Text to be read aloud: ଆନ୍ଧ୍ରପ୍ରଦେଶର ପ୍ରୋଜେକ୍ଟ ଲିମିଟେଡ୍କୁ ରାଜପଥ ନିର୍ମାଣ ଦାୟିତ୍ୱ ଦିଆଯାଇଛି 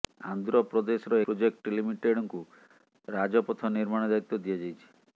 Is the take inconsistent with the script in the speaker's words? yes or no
no